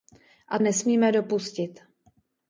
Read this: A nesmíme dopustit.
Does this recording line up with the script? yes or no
yes